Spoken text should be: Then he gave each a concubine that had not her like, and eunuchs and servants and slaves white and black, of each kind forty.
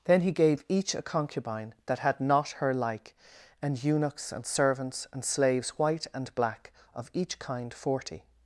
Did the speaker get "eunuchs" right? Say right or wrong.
right